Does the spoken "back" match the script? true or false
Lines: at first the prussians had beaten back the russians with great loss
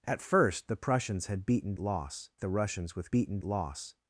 false